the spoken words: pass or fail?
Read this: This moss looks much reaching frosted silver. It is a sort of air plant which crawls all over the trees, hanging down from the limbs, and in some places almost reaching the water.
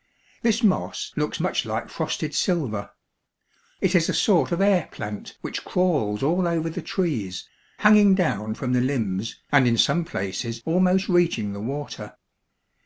fail